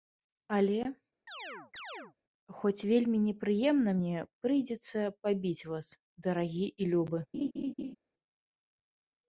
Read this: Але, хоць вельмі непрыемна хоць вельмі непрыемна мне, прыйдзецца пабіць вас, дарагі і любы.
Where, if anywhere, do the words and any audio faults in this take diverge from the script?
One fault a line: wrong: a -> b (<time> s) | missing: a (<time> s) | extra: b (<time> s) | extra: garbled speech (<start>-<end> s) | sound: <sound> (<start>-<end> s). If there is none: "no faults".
sound: chirp (1.3-2.1 s)
missing: хоць вельмі непрыемна (4.0 s)
sound: laugh (7.3-8.0 s)